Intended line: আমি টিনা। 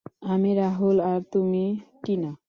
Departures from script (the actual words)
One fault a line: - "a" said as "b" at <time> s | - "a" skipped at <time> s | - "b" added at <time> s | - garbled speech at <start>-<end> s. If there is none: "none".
- "রাহুল আর তুমি" added at 0.5 s